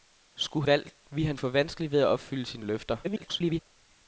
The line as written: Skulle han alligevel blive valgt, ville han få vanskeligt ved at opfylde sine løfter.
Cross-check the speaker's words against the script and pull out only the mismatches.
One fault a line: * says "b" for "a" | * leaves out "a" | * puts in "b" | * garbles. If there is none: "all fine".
* leaves out "han alligevel blive"
* garbles